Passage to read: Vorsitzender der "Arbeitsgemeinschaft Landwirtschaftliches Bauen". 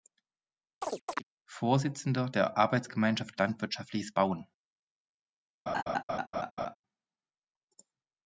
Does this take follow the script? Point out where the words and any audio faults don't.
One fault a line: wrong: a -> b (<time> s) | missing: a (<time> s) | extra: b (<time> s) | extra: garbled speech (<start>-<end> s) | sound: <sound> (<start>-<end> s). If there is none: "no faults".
sound: chirp (0.8-1.2 s)
sound: laugh (5.7-6.8 s)